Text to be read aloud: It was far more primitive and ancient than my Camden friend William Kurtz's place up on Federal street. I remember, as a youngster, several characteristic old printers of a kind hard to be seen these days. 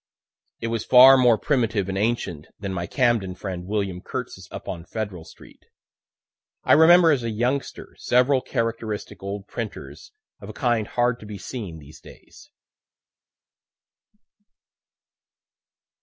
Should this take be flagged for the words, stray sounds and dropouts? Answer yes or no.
yes